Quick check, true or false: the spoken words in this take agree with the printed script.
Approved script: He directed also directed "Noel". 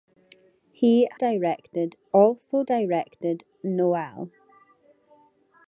true